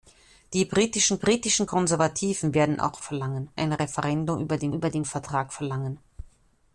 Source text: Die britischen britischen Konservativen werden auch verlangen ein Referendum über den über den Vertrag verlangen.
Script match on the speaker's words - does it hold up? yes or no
yes